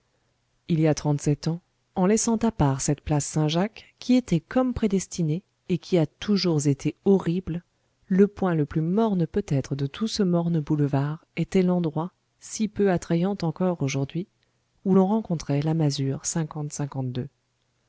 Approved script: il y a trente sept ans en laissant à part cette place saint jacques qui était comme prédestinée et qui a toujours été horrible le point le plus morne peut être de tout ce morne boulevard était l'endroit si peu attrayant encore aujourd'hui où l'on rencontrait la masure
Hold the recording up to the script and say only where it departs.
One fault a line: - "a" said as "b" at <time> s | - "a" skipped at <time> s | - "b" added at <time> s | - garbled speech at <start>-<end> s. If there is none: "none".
none